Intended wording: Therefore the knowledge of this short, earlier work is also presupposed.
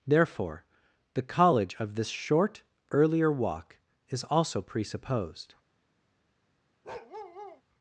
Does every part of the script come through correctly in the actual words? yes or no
no